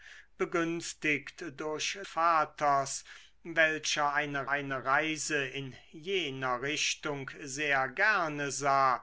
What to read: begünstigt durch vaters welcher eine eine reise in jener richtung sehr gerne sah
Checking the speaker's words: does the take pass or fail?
pass